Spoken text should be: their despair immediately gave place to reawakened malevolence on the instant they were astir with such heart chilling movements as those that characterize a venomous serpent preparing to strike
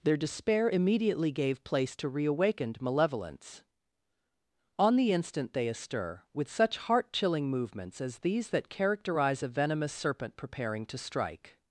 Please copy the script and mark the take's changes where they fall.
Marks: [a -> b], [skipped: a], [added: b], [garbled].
their despair immediately gave place to reawakened malevolence on the instant they [skipped: were] astir with such heart chilling movements as [those -> these] that characterize a venomous serpent preparing to strike